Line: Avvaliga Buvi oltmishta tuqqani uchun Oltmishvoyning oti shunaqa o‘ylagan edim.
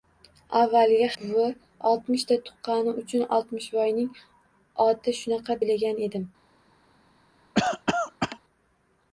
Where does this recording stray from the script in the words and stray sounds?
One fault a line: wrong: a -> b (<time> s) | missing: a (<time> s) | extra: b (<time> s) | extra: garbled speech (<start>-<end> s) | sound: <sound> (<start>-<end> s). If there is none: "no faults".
sound: cough (7.5-8.4 s)